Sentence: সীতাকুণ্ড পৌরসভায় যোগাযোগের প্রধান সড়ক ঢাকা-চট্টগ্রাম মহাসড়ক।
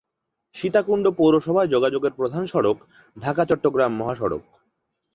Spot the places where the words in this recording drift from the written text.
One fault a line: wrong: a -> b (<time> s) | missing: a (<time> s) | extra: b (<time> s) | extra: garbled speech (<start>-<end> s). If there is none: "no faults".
no faults